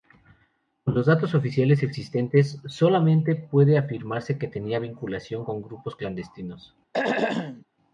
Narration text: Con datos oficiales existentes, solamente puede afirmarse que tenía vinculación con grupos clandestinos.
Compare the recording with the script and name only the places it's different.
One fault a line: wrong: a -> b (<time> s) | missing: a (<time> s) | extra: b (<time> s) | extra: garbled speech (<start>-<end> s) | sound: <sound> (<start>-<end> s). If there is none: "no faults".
extra: los (0.9 s)
sound: throat clearing (6.9-7.7 s)